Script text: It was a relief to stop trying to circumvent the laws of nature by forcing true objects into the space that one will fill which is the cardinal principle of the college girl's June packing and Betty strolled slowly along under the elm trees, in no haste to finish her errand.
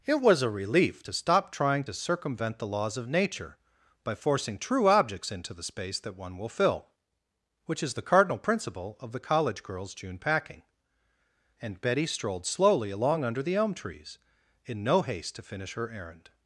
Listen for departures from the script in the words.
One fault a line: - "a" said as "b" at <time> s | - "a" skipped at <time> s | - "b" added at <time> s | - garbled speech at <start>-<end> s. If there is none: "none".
none